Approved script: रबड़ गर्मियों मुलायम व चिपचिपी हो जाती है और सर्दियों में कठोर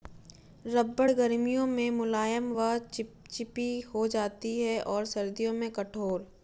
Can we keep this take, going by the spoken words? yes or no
no